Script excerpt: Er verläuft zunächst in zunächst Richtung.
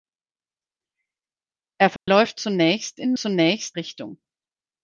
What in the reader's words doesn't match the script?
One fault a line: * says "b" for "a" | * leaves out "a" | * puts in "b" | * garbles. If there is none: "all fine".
all fine